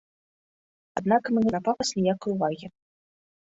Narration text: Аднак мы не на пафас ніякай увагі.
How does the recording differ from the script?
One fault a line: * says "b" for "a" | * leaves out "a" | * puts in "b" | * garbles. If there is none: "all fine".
all fine